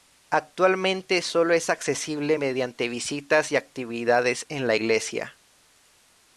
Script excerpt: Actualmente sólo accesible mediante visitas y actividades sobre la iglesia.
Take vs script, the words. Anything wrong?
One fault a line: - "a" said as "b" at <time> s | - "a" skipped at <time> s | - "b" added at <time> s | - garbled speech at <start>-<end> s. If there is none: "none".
- "es" added at 1.5 s
- "sobre" said as "en" at 4.5 s